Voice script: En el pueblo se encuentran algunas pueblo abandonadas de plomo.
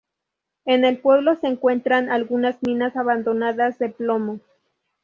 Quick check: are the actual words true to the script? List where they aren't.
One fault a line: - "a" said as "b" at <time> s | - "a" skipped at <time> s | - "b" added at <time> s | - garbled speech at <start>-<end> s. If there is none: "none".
- "pueblo" said as "minas" at 2.6 s